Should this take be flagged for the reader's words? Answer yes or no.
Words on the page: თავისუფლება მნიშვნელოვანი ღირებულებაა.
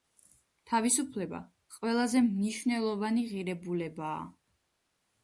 yes